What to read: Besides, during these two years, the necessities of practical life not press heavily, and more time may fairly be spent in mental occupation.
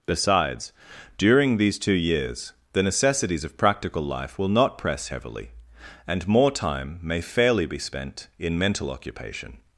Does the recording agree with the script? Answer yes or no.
no